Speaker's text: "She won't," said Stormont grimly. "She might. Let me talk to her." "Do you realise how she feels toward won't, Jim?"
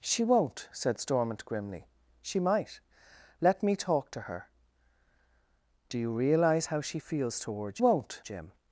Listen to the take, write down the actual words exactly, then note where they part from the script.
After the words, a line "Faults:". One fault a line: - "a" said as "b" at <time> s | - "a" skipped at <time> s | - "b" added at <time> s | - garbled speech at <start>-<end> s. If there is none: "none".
"She won't," said Stormont grimly. "She might. Let me talk to her." "Do you realise how she feels toward won't, Jim?"
Faults:
none